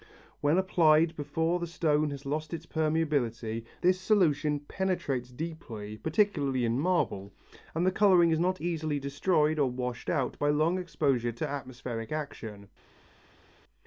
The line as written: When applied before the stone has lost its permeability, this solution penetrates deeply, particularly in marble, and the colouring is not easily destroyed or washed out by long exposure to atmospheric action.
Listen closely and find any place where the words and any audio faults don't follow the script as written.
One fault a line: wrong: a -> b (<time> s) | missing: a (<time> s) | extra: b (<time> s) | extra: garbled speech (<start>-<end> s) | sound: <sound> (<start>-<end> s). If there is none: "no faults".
no faults